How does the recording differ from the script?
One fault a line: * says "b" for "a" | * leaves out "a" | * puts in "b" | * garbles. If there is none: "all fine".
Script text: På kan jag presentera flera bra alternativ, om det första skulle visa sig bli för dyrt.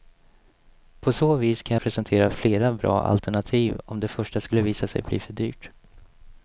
* puts in "så vis"